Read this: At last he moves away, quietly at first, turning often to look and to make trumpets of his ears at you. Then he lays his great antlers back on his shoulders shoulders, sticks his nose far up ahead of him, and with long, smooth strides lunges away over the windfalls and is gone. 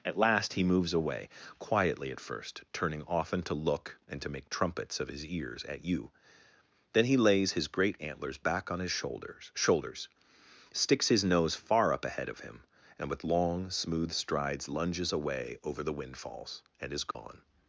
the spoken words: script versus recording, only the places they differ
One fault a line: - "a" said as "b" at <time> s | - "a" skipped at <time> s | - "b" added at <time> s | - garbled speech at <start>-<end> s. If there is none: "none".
none